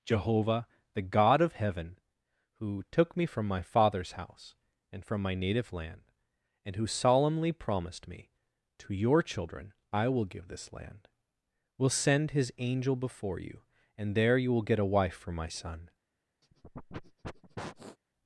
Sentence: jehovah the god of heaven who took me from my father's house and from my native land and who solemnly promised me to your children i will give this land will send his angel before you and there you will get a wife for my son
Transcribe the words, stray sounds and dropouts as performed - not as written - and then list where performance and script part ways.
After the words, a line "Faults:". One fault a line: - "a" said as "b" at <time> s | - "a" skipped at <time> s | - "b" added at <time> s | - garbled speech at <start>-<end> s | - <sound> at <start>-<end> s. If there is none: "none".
jehovah the god of heaven who took me from my father's house and from my native land and who solemnly promised me to your children i will give this land will send his angel before you and there you will get a wife for my son
Faults:
- sniff at 16.4-18.0 s